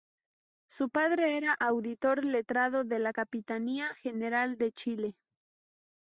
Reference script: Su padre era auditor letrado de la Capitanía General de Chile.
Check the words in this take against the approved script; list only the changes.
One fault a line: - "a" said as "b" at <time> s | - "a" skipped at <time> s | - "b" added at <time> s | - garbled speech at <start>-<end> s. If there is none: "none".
none